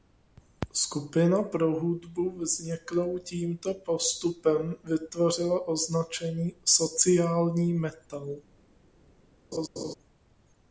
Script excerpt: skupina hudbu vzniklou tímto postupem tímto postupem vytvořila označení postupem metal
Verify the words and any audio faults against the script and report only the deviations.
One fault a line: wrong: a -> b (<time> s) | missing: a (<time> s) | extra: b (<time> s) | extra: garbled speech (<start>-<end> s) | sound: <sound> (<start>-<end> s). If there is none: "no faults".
extra: pro (1.4 s)
missing: tímto postupem (4.8 s)
wrong: postupem -> sociální (6.7 s)
sound: laugh (9.5-9.9 s)